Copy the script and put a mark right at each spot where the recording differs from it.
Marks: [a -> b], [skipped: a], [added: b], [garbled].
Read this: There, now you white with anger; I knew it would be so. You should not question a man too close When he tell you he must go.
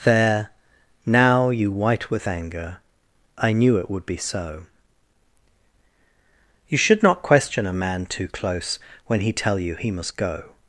There, now you white with anger; I knew it would be so. You should not question a man too close When he tell you he must go.